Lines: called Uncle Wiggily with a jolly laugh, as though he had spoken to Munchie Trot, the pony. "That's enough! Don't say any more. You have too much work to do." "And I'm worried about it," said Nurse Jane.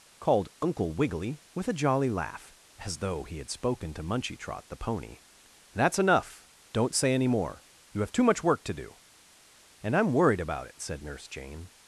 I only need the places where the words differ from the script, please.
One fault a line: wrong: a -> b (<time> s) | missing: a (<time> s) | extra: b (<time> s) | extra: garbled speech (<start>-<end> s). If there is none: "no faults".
no faults